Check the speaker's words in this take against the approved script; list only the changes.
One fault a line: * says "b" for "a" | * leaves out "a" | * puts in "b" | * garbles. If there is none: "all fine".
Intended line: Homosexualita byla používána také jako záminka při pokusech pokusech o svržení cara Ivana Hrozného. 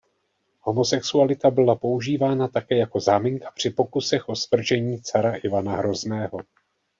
* leaves out "pokusech"